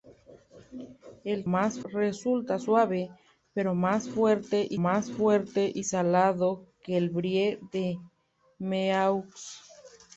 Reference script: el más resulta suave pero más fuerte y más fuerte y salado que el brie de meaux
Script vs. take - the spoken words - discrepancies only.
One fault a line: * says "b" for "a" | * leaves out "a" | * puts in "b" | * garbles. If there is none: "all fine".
all fine